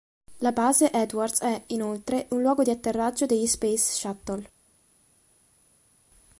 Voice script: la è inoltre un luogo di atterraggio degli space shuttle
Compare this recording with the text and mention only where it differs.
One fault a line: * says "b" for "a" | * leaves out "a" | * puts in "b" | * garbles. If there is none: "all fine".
* puts in "base edwards"